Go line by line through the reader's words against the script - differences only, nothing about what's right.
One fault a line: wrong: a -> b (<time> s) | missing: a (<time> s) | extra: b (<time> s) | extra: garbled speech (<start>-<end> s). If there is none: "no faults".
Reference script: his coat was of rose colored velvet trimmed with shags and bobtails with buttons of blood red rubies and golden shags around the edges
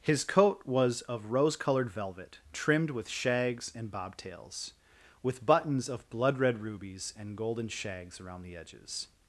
no faults